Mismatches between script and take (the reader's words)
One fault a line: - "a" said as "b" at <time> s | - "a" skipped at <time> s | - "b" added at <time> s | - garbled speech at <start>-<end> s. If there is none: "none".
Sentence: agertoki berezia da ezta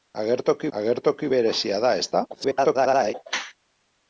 - "agertoki" added at 0.8 s
- garbled speech at 2.3-3.1 s